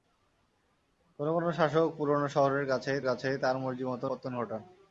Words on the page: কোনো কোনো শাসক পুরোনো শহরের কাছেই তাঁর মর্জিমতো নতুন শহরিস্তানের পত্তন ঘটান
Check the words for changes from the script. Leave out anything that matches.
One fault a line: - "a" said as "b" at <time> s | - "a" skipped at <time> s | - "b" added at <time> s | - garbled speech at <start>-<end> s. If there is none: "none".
- "কাছেই" added at 3.1 s
- "নতুন শহরিস্তানের" skipped at 4.1 s